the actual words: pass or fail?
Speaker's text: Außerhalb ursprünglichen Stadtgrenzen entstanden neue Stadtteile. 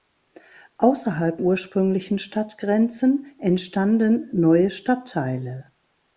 pass